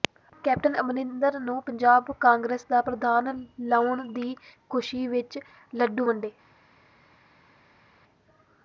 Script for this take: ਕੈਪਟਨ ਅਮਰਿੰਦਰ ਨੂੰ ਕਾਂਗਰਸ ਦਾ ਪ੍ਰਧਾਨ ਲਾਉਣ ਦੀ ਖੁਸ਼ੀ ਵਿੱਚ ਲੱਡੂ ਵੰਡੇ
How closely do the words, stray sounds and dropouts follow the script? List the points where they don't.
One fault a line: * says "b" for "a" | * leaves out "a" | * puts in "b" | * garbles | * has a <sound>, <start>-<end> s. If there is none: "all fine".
* puts in "ਪੰਜਾਬ"